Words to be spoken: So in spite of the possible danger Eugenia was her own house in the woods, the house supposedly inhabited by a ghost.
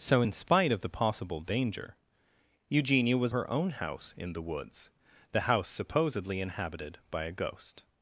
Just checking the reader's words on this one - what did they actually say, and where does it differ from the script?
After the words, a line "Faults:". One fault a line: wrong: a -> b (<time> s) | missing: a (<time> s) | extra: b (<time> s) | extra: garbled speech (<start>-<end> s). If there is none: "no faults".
So in spite of the possible danger Eugenia was her own house in the woods, the house supposedly inhabited by a ghost.
Faults:
no faults